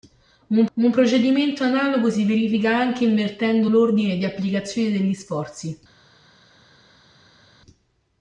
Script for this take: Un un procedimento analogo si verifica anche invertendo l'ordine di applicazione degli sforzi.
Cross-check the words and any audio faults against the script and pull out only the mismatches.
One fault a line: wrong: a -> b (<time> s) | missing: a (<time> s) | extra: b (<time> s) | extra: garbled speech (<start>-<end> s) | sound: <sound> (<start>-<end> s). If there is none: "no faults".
no faults